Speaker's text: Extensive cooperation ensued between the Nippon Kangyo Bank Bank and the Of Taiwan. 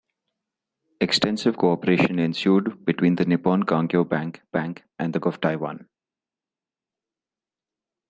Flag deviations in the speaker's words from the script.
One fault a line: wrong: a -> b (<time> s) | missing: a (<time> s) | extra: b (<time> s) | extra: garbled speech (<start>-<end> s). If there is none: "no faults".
no faults